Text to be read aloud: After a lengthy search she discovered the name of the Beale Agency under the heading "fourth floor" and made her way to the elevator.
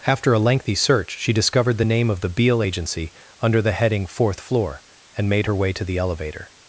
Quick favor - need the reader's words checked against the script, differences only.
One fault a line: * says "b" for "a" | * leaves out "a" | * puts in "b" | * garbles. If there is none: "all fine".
all fine